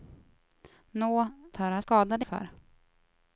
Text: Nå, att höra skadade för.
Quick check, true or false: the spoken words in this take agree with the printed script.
true